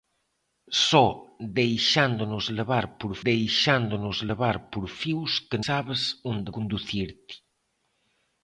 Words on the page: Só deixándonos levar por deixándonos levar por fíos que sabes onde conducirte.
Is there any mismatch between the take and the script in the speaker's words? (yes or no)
no